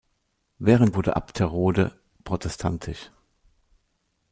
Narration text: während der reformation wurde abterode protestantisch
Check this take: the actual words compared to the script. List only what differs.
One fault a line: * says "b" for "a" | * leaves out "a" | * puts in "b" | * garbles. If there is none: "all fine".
* leaves out "der reformation"